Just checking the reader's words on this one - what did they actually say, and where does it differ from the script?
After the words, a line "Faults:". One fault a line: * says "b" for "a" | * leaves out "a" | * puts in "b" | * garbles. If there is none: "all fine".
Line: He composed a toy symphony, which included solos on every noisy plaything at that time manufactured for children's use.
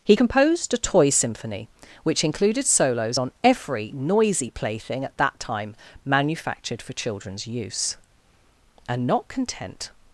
He composed a toy symphony, which included solos on every noisy plaything at that time manufactured for children's use. And not content
Faults:
* puts in "And not content"